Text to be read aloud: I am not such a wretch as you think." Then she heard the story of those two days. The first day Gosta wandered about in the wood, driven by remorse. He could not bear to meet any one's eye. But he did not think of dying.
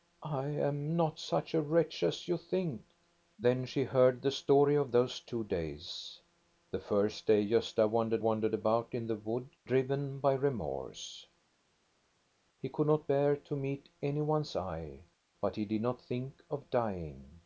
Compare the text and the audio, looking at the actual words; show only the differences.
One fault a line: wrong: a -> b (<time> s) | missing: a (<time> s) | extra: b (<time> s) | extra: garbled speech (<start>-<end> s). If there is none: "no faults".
extra: wandered (8.2 s)